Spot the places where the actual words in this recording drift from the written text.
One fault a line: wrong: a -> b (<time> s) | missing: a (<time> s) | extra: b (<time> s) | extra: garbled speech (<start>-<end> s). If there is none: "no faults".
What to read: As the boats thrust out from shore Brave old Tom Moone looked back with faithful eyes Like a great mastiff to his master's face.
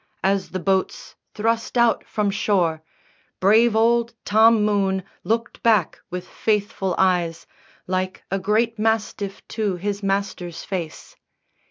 no faults